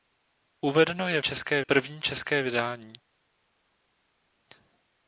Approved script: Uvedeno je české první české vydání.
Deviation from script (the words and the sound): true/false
false